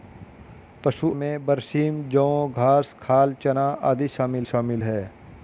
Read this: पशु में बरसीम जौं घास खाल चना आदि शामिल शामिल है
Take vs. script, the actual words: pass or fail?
pass